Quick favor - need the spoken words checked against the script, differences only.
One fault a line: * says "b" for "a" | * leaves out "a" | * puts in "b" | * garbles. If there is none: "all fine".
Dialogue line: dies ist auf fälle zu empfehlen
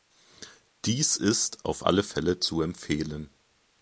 * puts in "alle"